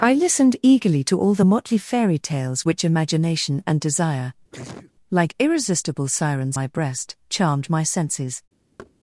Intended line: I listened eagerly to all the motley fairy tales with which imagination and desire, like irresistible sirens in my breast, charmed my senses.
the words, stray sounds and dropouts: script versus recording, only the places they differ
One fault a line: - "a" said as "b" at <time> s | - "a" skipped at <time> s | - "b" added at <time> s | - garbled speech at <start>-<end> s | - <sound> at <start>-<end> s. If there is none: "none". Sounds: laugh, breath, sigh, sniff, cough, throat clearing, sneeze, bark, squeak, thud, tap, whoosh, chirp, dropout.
- "with" skipped at 2.6 s
- sneeze at 4.5-4.9 s
- "in" skipped at 6.6 s
- thud at 8.8-8.9 s